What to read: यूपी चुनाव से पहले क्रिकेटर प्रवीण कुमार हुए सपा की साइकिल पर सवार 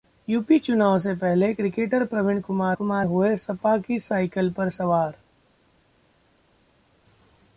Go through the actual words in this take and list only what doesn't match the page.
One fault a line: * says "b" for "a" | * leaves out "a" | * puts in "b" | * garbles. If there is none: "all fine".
* puts in "कुमार"